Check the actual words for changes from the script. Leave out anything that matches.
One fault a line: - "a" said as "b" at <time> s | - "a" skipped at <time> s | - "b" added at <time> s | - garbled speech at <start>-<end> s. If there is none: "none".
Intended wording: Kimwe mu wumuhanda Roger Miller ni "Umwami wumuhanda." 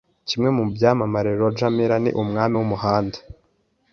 - "wumuhanda" said as "byamamare" at 0.7 s